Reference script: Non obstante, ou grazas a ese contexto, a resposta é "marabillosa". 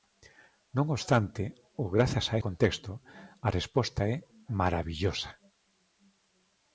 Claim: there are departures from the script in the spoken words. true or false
true